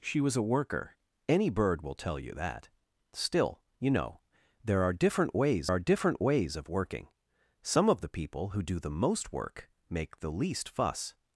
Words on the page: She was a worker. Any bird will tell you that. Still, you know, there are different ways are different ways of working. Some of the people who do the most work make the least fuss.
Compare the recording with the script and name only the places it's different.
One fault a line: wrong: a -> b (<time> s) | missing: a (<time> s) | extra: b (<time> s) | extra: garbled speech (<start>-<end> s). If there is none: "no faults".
no faults